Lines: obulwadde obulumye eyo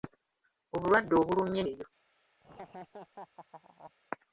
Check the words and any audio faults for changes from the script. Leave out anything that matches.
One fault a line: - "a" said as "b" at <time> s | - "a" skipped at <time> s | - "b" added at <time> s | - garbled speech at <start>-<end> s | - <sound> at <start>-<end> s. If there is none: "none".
- laugh at 2.4-3.9 s